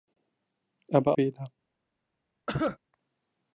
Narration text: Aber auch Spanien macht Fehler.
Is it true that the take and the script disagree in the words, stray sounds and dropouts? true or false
true